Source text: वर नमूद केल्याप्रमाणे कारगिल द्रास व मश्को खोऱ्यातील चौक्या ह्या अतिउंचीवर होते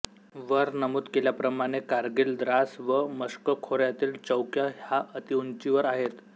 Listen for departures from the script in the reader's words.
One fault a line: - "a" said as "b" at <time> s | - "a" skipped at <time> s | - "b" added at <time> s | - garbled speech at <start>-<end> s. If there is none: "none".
- "होते" said as "आहेत" at 5.9 s